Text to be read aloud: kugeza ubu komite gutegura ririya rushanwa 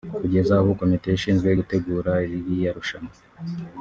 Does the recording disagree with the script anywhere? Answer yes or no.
yes